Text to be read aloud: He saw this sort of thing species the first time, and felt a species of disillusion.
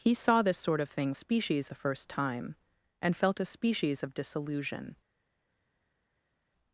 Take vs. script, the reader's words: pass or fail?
pass